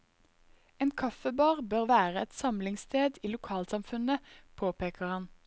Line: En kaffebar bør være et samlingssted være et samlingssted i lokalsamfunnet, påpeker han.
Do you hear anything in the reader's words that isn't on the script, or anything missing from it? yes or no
yes